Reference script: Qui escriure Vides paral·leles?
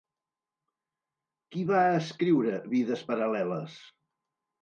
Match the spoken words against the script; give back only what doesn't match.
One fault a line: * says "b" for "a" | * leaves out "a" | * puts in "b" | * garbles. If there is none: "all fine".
* puts in "va"